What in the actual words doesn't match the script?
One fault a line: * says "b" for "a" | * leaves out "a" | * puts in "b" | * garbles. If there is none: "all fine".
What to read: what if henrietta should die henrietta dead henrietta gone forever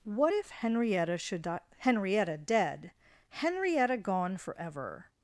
all fine